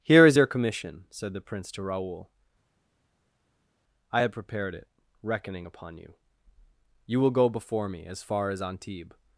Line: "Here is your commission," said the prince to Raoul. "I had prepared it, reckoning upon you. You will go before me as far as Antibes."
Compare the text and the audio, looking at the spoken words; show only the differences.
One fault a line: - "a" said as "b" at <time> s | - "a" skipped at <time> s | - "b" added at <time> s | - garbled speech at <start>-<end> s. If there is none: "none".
none